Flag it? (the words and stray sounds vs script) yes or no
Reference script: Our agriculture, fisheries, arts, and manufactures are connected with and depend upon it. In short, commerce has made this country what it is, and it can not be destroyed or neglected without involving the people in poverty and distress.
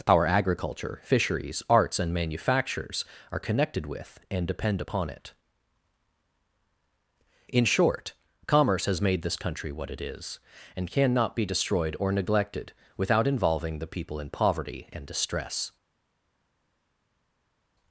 yes